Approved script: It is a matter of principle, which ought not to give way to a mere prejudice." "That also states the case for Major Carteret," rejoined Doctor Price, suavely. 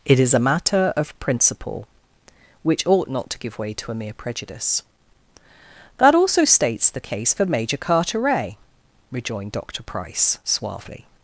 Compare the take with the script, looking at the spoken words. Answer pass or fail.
pass